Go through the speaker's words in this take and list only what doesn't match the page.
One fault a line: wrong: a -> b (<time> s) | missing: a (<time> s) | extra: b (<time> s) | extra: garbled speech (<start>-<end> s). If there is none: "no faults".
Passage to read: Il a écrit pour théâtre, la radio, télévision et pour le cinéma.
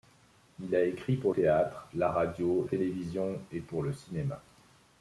no faults